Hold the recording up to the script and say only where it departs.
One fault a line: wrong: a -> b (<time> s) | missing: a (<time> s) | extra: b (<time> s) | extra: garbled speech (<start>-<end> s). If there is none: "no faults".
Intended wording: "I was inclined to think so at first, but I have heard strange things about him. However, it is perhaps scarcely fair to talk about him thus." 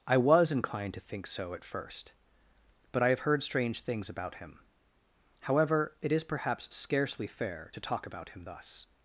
no faults